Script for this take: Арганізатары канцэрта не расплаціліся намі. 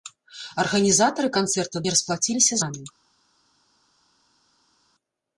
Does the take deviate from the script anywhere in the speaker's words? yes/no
no